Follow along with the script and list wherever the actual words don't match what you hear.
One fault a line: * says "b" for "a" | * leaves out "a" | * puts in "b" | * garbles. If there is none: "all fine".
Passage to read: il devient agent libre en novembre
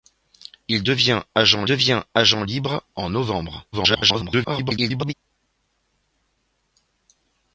* puts in "devient agent"
* garbles